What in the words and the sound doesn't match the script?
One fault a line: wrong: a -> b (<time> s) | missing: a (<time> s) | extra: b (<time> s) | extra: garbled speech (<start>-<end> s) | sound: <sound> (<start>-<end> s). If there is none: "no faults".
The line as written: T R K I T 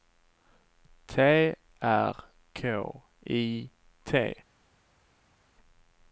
no faults